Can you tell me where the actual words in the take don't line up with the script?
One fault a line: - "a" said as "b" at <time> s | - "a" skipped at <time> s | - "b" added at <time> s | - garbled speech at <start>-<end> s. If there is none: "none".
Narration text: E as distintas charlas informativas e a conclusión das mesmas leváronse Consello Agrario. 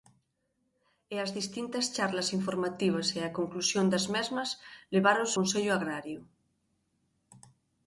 none